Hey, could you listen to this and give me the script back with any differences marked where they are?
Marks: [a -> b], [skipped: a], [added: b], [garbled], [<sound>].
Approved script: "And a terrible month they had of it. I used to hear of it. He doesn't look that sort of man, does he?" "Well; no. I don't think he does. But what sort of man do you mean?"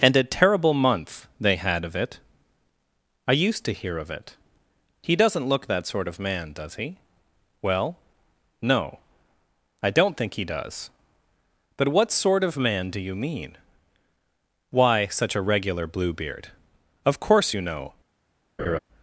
"And a terrible month they had of it. I used to hear of it. He doesn't look that sort of man, does he?" "Well; no. I don't think he does. But what sort of man do you mean?" [added: Why such a regular Bluebeard Of course you know] [laugh]